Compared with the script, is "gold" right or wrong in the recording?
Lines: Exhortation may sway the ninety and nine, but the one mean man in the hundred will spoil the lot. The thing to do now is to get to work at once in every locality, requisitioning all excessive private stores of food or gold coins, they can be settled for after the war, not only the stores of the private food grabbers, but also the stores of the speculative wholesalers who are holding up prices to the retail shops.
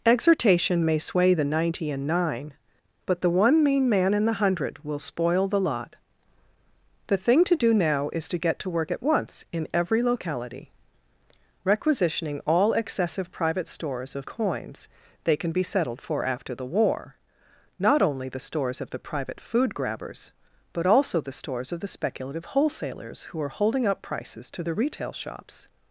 wrong